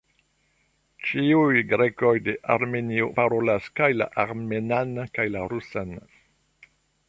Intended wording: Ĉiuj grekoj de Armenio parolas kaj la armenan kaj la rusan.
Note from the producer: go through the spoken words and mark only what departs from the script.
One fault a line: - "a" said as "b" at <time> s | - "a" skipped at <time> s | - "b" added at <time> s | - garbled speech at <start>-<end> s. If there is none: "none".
none